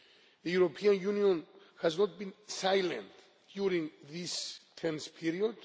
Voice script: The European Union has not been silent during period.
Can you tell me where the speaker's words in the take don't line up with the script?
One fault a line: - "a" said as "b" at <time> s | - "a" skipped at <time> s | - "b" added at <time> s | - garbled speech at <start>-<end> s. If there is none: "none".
- "this tense" added at 4.1 s